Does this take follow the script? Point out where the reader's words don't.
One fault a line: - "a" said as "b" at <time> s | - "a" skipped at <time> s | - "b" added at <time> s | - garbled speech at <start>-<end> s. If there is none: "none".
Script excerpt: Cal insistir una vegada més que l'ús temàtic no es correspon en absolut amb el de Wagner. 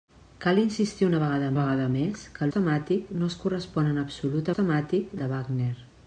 - "vegada" added at 1.6 s
- "l'ús" skipped at 2.5 s
- "amb" said as "temàtic" at 4.6 s